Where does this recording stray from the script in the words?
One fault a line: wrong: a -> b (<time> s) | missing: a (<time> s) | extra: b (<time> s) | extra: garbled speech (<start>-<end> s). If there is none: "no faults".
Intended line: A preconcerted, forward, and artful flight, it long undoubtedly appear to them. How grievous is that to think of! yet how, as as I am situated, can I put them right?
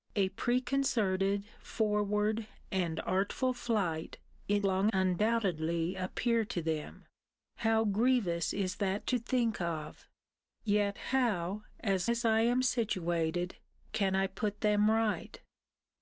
no faults